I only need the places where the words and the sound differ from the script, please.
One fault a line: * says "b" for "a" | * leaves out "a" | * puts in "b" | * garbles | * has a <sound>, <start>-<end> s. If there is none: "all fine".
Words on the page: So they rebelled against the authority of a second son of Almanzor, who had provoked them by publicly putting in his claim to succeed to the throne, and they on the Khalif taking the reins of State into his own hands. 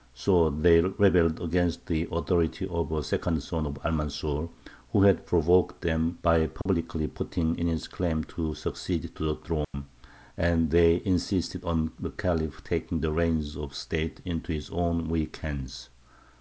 * has a dropout, 6.6-6.7 s
* has a dropout, 9.6-9.7 s
* puts in "insisted"
* puts in "weak"